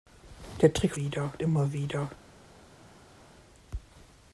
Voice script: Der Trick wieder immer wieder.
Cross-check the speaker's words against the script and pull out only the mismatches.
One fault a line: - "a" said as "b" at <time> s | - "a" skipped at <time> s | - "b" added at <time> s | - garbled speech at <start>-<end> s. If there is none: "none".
none